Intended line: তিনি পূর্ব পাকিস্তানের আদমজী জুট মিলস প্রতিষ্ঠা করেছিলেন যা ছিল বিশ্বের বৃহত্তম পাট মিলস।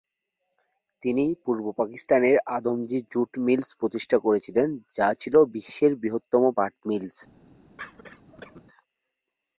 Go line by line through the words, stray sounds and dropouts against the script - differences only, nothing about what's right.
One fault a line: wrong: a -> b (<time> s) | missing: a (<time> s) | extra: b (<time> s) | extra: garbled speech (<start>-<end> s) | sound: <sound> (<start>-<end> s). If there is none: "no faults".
sound: cough (7.8-8.6 s)